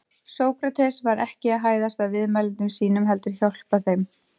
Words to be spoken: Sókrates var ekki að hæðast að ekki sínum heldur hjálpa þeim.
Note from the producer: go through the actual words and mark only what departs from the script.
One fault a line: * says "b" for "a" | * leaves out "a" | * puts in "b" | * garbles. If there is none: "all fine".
* says "viðmælendum" for "ekki"